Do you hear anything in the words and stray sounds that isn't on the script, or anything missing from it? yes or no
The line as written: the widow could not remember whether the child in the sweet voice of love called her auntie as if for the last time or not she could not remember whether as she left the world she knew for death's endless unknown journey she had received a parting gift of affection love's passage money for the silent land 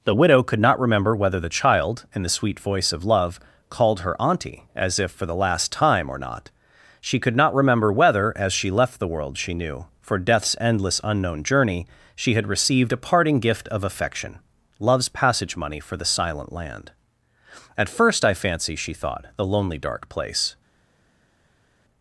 yes